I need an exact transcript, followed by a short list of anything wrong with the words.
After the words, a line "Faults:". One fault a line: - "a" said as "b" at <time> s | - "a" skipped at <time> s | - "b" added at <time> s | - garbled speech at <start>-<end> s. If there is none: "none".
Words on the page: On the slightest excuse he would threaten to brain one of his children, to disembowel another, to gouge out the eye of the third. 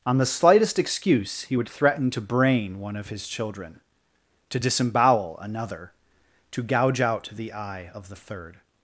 On the slightest excuse he would threaten to brain one of his children, to disembowel another, to gouge out the eye of the third.
Faults:
none